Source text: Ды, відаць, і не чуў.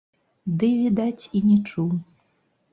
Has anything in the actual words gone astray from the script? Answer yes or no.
no